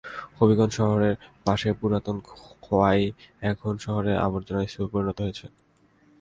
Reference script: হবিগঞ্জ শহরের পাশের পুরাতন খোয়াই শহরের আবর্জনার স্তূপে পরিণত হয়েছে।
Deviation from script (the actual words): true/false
true